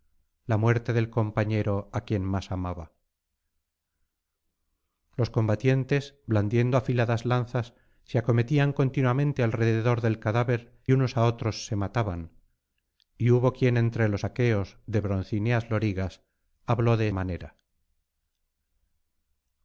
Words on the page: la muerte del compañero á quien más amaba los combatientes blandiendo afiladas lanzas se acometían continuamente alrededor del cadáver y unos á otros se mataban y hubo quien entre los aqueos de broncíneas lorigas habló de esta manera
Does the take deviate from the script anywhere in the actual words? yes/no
yes